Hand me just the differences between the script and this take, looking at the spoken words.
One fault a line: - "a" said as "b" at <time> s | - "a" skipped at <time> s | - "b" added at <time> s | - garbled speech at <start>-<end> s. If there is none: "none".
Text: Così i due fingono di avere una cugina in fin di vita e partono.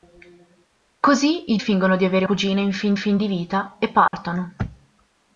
- "due" skipped at 1.6 s
- "una" skipped at 2.3 s
- "fin" added at 2.9 s